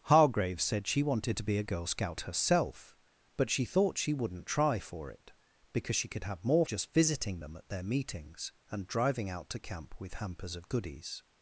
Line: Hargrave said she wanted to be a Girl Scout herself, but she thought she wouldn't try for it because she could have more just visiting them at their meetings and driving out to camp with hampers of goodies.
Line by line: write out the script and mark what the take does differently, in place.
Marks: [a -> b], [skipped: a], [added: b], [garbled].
Hargrave said she wanted to be a Girl Scout herself, but she thought she wouldn't try for it because she could have more just visiting them at their meetings and driving out to camp with hampers of goodies.